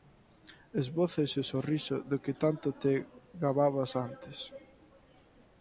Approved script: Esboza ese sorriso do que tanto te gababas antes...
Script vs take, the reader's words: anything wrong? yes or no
no